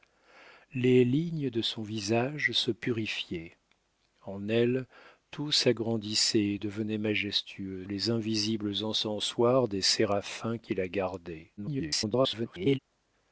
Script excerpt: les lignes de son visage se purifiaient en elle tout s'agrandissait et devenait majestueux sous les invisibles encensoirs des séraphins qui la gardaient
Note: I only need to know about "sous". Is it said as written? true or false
false